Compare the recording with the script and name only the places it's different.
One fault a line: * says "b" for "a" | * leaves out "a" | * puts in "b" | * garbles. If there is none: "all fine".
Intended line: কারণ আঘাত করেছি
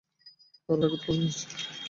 all fine